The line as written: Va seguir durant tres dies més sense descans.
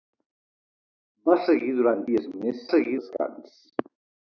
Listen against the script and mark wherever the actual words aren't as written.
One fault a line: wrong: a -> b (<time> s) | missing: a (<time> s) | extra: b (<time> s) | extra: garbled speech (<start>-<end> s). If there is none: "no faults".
missing: tres (2.0 s)
wrong: sense -> seguir (2.7 s)